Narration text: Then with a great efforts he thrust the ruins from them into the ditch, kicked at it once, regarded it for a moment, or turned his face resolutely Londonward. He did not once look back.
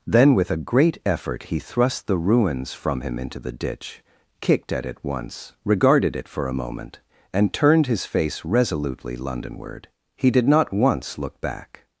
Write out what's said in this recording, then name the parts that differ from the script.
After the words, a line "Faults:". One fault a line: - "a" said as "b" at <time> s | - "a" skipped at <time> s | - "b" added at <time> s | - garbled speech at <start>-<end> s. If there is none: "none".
Then with a great effort he thrust the ruins from him into the ditch, kicked at it once, regarded it for a moment, and turned his face resolutely Londonward. He did not once look back.
Faults:
- "efforts" said as "effort" at 1.1 s
- "them" said as "him" at 3.0 s
- "or" said as "and" at 7.3 s